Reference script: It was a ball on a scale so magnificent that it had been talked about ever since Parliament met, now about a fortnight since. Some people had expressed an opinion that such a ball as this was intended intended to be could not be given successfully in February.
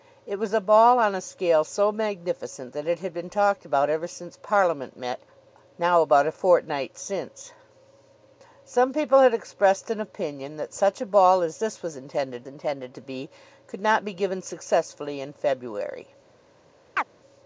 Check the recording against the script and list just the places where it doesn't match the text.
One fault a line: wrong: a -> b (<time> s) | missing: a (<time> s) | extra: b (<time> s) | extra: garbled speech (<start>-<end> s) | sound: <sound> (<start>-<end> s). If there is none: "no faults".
sound: chirp (17.0-17.0 s)